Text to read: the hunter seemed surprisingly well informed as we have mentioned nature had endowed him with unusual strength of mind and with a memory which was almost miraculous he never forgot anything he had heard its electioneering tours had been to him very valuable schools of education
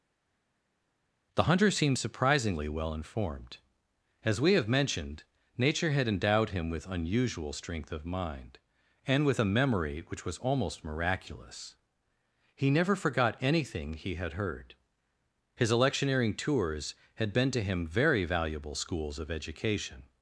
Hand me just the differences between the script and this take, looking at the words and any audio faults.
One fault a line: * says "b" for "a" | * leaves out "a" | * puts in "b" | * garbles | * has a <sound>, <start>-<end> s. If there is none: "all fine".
* says "his" for "its"